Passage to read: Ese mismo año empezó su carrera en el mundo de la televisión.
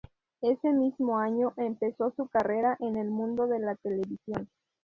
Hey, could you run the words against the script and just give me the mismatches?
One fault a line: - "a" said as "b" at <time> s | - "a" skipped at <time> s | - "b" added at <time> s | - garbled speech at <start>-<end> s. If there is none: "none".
none